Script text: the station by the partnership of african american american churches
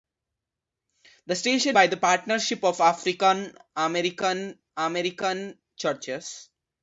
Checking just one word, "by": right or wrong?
right